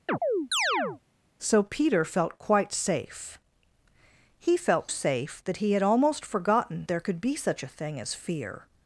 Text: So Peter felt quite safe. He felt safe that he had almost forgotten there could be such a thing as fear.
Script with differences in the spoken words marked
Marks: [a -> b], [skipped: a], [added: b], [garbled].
So Peter felt quite safe. He felt safe that he had almost forgotten there could be such a thing as fear.